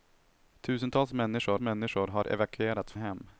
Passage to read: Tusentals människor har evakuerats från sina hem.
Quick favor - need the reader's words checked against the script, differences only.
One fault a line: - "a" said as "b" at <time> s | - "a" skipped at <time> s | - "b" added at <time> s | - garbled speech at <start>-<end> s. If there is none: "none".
- "människor" added at 1.6 s
- "från sina" skipped at 2.9 s